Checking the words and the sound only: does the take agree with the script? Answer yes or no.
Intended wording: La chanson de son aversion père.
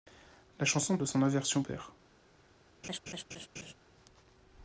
no